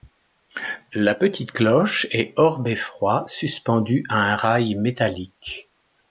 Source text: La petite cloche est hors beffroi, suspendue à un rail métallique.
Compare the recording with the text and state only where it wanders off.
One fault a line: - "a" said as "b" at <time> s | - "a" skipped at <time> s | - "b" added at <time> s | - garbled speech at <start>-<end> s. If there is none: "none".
none